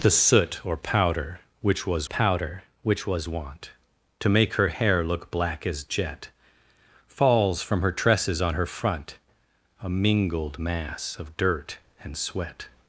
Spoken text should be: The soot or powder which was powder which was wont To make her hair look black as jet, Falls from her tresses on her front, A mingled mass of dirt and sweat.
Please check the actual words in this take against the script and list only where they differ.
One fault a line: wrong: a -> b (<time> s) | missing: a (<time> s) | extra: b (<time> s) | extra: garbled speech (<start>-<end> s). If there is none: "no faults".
no faults